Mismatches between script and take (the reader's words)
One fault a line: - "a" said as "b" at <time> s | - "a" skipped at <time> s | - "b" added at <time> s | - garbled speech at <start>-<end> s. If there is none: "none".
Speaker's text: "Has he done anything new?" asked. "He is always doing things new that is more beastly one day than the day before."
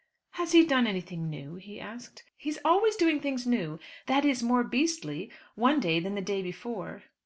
- "he" added at 1.6 s